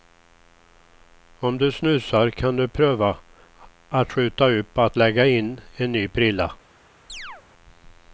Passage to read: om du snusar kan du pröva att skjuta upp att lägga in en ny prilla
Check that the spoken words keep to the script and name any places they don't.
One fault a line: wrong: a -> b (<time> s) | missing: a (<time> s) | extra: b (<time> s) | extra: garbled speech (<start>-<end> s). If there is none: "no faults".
no faults